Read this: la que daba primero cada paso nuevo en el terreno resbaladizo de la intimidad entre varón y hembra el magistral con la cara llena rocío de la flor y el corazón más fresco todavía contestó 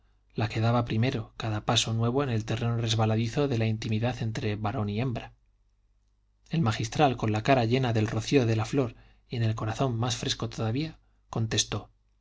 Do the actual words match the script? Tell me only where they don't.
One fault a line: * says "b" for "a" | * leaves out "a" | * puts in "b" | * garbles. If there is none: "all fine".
* puts in "del"